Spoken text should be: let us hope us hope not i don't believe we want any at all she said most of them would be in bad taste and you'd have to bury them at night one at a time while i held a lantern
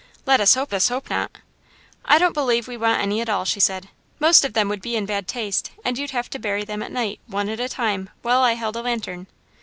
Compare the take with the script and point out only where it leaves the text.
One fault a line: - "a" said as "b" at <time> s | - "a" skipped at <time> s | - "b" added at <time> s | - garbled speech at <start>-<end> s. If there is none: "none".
none